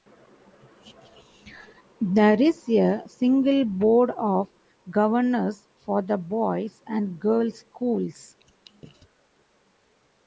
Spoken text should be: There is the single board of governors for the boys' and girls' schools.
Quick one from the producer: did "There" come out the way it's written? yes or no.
yes